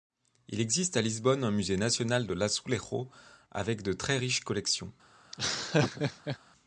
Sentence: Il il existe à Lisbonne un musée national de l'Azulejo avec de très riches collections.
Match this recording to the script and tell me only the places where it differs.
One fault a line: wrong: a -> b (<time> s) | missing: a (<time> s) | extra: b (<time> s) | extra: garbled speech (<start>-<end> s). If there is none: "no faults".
missing: il (0.6 s)